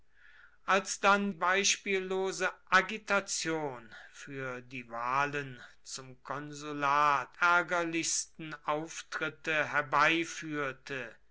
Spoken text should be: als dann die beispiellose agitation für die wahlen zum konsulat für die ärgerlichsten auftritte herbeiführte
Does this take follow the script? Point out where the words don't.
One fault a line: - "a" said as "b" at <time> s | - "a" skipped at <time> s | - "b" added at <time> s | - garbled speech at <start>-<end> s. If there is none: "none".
- "die" skipped at 1.3 s
- "für die" skipped at 7.4 s